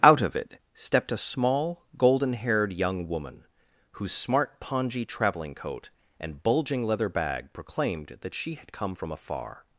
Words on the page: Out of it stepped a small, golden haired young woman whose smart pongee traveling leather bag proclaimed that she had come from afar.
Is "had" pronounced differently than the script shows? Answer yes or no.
no